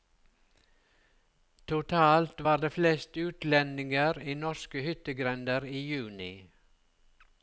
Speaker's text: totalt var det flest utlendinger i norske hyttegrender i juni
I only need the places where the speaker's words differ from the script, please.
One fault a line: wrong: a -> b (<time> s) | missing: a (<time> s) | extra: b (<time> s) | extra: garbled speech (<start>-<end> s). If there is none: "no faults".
no faults